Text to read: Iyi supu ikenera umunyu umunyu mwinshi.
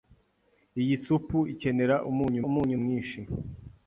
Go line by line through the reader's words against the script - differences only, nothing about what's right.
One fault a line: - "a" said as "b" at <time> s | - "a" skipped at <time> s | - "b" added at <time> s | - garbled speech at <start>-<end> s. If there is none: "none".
none